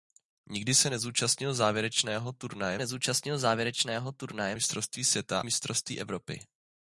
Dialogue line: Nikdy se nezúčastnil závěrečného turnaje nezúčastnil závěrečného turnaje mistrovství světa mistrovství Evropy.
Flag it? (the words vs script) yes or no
no